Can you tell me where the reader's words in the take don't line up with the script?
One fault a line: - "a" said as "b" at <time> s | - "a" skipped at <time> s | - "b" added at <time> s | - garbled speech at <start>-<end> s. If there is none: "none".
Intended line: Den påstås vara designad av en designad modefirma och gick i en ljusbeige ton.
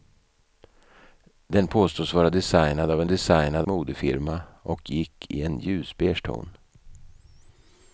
none